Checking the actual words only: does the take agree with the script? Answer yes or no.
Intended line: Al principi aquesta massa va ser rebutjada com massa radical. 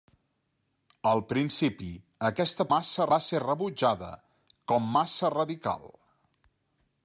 yes